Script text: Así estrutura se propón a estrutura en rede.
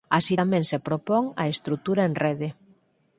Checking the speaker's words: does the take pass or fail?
fail